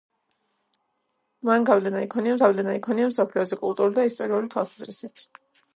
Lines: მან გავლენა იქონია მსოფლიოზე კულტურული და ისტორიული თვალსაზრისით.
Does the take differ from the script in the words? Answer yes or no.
yes